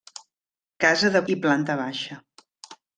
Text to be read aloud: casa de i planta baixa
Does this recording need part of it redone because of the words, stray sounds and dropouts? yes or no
no